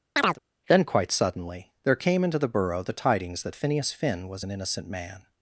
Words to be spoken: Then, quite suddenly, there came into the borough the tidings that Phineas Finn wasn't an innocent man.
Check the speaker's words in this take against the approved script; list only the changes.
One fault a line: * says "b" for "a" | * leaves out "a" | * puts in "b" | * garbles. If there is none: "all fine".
* says "was" for "wasn't"